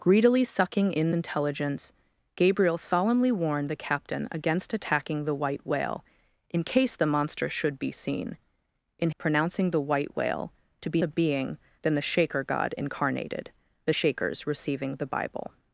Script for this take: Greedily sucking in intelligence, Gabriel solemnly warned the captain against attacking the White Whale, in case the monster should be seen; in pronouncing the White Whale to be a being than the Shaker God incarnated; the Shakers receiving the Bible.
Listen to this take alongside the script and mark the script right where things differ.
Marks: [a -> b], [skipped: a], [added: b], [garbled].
Greedily sucking in intelligence, Gabriel solemnly warned the captain against attacking the White Whale, in case the monster should be seen; in pronouncing the White Whale to be a being than the Shaker God incarnated; the Shakers receiving the Bible.